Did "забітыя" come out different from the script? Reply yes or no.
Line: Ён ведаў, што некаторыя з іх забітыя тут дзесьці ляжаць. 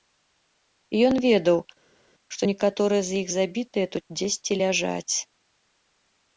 no